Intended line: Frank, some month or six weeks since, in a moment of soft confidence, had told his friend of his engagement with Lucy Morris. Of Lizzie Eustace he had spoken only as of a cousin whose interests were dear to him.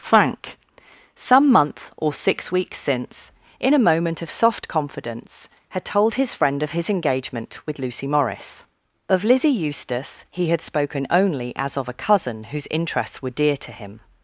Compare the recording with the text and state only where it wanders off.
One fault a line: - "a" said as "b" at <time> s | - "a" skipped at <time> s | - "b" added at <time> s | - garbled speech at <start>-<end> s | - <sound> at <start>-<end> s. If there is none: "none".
none